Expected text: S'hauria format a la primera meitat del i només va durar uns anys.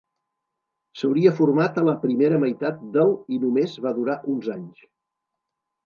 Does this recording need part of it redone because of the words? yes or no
no